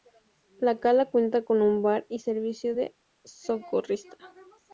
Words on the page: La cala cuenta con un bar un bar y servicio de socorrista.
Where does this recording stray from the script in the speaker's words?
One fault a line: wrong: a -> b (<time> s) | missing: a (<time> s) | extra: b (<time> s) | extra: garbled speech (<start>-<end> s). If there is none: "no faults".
missing: un bar (2.1 s)